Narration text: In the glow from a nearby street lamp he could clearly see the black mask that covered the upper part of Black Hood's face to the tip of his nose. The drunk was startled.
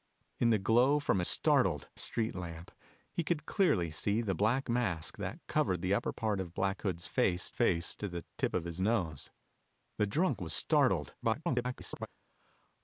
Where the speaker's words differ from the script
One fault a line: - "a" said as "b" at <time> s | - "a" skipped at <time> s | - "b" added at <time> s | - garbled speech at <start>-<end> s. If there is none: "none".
- "nearby" said as "startled" at 1.3 s
- "face" added at 7.5 s
- garbled speech at 11.2-12.1 s